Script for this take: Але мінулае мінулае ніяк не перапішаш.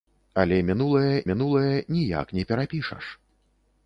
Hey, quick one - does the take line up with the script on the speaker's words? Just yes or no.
yes